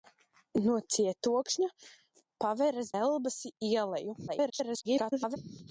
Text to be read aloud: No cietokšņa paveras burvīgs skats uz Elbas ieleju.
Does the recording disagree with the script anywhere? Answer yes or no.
yes